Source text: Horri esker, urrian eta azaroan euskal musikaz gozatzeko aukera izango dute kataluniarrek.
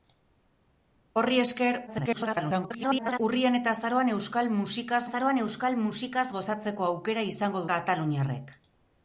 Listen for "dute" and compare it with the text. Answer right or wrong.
wrong